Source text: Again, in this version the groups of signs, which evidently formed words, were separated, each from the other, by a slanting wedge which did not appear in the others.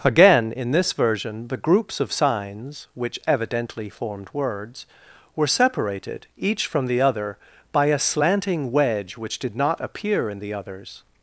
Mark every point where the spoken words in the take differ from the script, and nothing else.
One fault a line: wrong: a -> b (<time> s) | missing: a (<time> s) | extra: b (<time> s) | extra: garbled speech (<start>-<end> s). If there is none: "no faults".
no faults